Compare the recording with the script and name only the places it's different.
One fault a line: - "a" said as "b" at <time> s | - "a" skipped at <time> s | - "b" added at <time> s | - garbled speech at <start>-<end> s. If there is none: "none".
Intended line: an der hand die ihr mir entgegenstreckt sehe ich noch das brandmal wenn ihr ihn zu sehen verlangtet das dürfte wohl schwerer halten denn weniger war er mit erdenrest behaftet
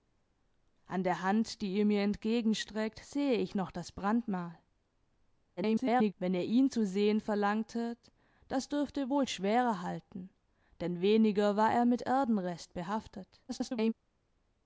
- garbled speech at 5.6-6.1 s
- garbled speech at 13.5-13.9 s